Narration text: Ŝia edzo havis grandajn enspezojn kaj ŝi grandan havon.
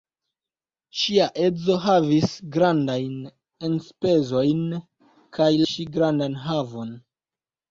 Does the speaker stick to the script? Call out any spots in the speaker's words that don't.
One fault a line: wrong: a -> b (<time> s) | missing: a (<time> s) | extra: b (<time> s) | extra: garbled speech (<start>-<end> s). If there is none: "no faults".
no faults